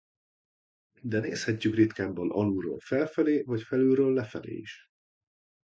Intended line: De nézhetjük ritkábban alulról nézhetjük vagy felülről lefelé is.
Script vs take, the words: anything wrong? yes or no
yes